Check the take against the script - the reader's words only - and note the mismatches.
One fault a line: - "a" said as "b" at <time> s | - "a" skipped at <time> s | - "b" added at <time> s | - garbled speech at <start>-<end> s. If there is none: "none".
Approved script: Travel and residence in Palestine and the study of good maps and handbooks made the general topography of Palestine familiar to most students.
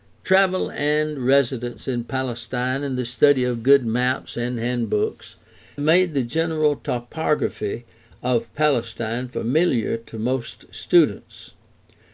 none